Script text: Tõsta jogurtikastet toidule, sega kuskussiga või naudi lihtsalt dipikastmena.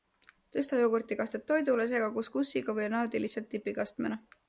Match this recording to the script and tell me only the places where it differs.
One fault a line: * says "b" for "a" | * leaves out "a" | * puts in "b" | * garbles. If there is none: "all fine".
all fine